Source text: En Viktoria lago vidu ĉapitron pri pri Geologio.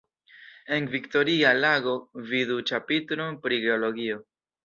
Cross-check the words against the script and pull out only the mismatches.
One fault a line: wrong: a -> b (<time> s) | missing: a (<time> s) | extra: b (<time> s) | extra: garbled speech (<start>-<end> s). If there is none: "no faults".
missing: pri (3.6 s)